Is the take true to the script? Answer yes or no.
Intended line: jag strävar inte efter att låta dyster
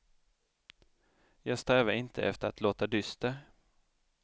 yes